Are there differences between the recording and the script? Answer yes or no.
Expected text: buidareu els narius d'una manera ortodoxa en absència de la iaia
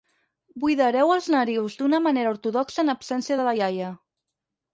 no